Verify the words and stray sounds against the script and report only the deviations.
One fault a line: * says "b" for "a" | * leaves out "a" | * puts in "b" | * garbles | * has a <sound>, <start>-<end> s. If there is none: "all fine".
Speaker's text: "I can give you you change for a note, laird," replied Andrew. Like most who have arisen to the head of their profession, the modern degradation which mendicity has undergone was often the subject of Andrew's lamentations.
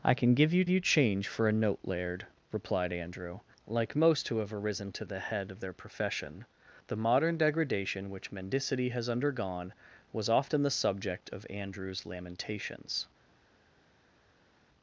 all fine